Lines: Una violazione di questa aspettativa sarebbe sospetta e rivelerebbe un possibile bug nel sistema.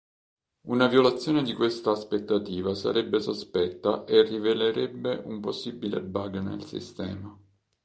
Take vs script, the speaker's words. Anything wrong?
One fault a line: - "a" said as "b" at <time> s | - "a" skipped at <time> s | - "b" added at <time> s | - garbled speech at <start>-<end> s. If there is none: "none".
none